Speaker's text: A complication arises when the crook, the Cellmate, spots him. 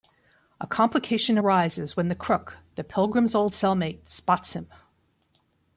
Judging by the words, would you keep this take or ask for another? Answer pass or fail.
fail